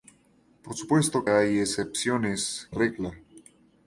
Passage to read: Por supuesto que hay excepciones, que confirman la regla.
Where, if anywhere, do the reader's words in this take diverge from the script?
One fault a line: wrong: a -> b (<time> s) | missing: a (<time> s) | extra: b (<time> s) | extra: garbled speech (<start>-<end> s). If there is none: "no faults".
missing: que (1.3 s)
missing: que confirman la (2.7 s)